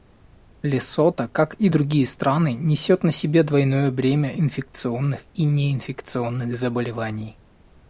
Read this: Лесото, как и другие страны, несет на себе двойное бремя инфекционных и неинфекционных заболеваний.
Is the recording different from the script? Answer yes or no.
no